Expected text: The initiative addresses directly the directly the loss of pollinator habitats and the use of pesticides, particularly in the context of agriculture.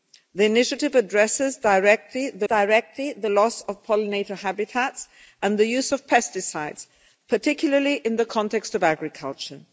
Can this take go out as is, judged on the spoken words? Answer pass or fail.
pass